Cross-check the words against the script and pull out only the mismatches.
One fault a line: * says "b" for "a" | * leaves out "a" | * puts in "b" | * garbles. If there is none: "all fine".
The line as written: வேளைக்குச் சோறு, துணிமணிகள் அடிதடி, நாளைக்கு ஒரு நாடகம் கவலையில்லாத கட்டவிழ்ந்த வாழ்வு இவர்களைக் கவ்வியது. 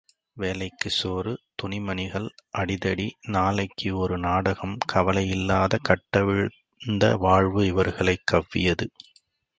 all fine